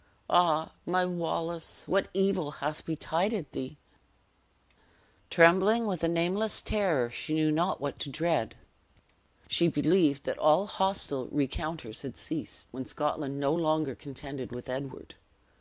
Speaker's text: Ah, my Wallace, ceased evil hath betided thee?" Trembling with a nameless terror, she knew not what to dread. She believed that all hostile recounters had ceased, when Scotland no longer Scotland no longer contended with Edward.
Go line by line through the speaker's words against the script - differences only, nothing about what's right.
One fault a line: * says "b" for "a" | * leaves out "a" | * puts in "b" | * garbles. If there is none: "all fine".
* says "what" for "ceased"
* leaves out "Scotland no longer"